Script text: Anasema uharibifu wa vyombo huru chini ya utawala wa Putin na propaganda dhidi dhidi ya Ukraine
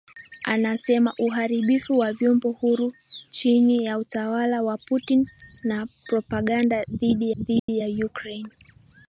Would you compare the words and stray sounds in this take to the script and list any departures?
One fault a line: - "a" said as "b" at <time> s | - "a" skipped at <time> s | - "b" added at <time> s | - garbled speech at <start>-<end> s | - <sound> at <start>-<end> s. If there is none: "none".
- dropout at 7.6-7.7 s